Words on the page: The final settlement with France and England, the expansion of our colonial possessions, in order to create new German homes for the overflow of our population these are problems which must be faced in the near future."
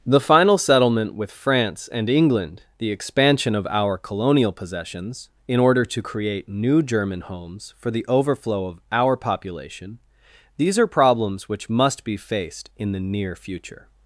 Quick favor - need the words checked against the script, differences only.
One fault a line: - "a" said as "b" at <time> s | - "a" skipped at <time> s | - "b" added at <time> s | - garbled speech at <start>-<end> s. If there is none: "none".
none